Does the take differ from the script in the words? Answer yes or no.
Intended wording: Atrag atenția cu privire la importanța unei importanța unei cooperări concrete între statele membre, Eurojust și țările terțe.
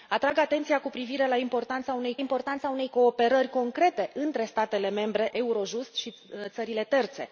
no